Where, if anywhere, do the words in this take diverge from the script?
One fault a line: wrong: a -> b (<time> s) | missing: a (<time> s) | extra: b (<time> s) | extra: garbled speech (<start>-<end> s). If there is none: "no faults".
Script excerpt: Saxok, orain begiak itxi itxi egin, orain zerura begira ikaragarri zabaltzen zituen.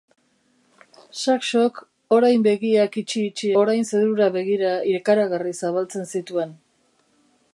missing: egin (3.5 s)